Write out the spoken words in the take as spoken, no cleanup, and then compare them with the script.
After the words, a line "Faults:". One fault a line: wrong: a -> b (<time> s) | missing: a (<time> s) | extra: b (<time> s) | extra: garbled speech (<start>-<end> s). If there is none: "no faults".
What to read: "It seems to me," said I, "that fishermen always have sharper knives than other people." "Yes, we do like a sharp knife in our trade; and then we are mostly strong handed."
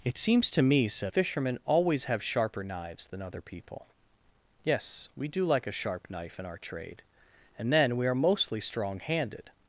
"It seems to me," said fishermen always have sharper knives than other people." "Yes, we do like a sharp knife in our trade; and then we are mostly strong handed."
Faults:
missing: I that (1.1 s)